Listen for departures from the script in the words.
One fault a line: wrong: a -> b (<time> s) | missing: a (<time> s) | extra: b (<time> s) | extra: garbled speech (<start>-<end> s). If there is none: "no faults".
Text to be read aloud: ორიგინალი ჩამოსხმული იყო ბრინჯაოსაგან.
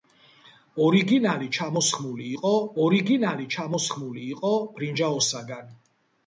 extra: ორიგინალი ჩამოსხმული იყო (2.8 s)